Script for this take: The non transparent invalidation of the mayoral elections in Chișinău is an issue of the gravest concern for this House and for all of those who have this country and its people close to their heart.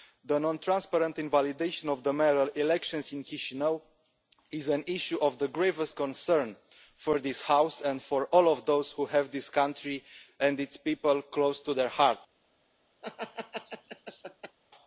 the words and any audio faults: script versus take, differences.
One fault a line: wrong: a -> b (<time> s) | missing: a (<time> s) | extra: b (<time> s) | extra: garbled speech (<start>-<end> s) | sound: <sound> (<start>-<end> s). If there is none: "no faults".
sound: laugh (13.0-14.6 s)